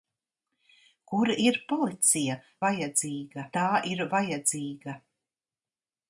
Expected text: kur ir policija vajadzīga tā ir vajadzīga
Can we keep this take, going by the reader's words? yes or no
yes